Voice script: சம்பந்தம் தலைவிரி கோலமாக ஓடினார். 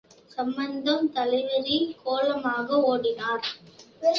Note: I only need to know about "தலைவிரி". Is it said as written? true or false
true